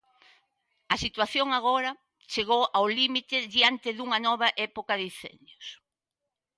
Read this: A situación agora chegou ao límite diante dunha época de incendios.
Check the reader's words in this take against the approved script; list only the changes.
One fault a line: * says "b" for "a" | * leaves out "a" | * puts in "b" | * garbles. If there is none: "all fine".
* puts in "nova"